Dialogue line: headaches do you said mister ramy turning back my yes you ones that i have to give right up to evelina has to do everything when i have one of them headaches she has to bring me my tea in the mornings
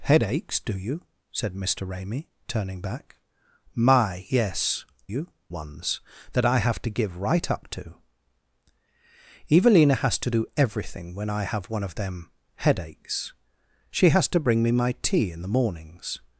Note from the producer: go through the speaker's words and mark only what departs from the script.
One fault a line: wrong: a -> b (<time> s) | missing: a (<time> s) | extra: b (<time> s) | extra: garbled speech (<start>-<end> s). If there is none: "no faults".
no faults